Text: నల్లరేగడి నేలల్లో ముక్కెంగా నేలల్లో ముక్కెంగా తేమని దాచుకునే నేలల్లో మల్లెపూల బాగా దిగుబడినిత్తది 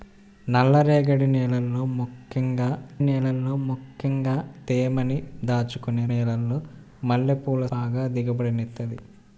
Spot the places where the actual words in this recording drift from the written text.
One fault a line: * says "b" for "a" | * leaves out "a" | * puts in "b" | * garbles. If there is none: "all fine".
all fine